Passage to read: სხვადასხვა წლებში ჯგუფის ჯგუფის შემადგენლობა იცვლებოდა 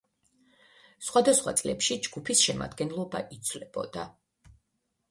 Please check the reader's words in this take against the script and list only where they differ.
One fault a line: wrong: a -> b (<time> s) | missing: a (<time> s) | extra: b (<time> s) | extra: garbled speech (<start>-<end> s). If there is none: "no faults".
missing: ჯგუფის (2.5 s)